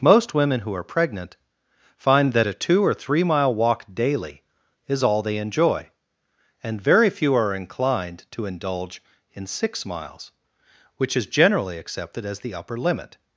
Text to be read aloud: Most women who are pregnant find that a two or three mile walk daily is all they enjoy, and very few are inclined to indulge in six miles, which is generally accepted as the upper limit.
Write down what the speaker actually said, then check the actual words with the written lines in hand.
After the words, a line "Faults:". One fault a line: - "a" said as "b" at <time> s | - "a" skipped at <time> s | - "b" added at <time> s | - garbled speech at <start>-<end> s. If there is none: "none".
Most women who are pregnant find that a two or three mile walk daily is all they enjoy, and very few are inclined to indulge in six miles, which is generally accepted as the upper limit.
Faults:
none